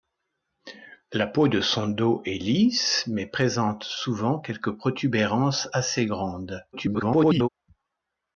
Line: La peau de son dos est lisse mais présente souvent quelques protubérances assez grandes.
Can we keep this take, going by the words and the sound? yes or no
no